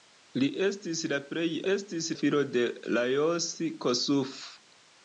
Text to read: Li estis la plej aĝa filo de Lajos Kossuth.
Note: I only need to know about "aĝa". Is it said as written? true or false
false